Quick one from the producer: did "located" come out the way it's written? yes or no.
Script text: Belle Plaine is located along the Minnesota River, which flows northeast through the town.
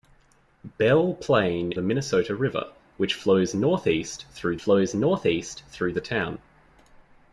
no